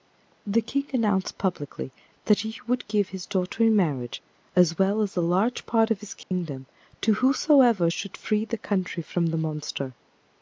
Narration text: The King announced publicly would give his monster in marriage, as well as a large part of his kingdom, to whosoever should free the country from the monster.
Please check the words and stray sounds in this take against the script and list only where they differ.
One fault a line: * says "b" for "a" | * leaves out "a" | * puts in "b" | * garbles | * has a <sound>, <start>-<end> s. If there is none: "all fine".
* puts in "that he"
* says "daughter" for "monster"
* has a dropout, 6.2-6.3 s